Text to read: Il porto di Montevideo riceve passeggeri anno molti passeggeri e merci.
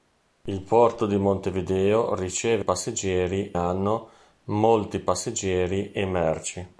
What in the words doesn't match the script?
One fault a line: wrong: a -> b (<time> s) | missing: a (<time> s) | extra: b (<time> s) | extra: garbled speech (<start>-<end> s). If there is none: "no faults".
no faults